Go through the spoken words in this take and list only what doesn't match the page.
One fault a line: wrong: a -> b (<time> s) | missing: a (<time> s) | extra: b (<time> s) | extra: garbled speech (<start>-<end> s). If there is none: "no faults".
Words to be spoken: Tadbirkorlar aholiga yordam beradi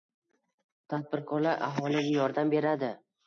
no faults